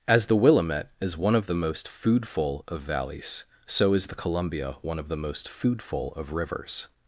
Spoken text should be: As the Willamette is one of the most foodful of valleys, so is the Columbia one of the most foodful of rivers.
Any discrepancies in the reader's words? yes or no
no